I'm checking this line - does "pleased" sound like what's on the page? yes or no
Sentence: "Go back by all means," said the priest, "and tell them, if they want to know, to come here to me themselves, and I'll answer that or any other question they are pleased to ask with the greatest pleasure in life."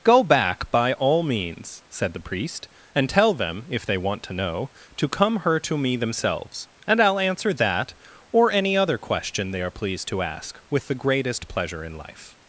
yes